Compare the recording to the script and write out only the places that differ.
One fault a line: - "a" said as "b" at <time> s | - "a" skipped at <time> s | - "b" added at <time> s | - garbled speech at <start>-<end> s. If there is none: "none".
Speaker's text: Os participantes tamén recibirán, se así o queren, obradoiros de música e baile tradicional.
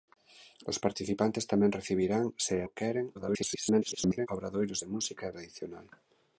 - "así" skipped at 2.5 s
- garbled speech at 3.1-4.3 s
- "baile" skipped at 5.3 s